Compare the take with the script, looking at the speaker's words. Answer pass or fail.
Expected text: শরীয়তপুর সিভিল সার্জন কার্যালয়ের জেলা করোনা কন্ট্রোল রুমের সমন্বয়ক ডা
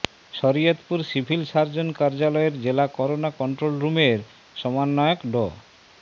pass